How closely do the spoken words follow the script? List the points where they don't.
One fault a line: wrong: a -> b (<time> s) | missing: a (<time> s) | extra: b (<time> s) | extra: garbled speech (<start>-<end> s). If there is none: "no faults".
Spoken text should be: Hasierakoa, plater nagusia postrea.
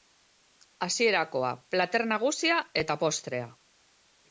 extra: eta (2.9 s)